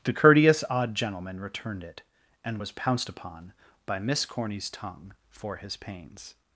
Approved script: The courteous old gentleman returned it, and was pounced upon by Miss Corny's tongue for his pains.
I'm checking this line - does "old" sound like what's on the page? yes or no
no